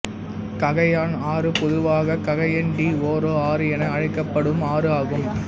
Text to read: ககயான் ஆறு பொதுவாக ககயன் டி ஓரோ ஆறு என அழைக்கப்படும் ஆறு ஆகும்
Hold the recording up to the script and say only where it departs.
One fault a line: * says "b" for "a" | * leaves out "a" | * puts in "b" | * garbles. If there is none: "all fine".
all fine